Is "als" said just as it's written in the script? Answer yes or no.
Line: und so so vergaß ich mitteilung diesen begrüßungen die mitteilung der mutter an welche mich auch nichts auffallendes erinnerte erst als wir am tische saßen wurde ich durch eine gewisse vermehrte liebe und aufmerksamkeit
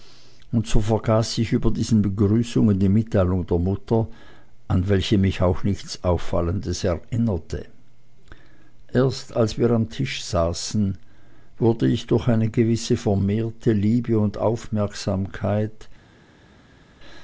yes